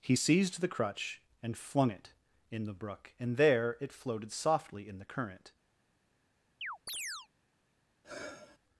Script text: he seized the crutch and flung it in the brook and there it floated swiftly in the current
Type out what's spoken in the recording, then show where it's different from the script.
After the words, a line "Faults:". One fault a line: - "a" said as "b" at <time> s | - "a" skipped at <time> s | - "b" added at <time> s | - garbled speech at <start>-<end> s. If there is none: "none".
he seized the crutch and flung it in the brook and there it floated softly in the current
Faults:
- "swiftly" said as "softly" at 4.3 s